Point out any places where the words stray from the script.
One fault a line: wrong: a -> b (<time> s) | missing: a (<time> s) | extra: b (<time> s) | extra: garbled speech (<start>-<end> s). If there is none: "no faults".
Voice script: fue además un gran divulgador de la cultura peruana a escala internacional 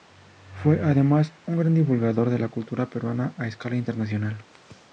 no faults